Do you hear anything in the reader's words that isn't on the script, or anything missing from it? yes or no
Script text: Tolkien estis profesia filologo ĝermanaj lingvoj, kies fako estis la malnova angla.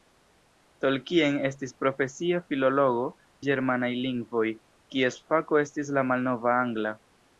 no